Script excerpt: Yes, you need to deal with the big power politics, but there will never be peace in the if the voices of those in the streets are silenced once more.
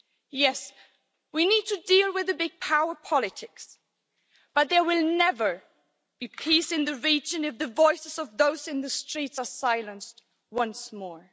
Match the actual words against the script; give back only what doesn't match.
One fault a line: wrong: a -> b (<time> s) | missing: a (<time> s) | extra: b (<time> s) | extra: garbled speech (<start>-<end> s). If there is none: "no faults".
wrong: you -> we (1.3 s)
extra: region (7.0 s)